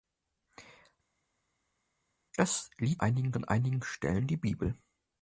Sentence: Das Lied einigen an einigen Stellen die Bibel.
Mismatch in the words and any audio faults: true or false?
false